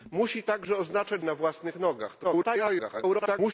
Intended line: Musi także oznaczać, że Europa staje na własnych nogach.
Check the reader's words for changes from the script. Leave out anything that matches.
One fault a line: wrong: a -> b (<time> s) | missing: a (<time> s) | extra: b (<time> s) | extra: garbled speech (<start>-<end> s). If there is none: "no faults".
missing: że Europa staje (1.2 s)
extra: garbled speech (2.2-3.5 s)